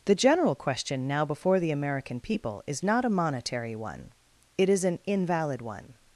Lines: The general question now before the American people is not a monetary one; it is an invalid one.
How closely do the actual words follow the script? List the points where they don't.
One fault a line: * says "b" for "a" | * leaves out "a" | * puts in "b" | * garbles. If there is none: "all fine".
all fine